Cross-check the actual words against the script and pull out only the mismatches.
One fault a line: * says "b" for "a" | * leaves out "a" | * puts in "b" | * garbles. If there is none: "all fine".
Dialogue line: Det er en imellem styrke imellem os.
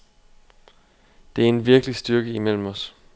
* says "virkelig" for "imellem"